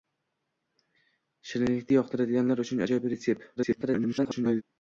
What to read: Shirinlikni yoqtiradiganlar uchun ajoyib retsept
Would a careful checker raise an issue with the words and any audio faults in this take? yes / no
yes